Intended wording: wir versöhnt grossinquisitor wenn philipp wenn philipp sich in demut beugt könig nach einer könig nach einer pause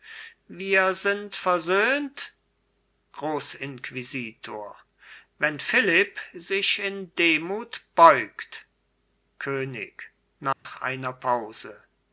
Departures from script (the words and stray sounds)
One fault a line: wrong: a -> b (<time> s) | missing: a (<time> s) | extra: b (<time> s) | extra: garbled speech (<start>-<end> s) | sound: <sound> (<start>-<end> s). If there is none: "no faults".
extra: sind (0.9 s)
missing: wenn philipp (6.2 s)
sound: dropout (10.5-10.7 s)
missing: könig nach einer (11.1 s)